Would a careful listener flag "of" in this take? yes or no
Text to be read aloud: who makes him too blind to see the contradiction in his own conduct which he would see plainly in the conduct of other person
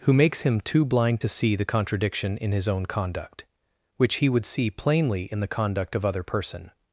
no